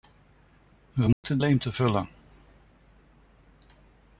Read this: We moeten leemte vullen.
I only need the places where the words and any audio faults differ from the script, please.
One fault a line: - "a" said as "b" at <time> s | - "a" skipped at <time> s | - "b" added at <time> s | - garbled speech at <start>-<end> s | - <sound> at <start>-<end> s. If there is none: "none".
- dropout at 1.1-1.2 s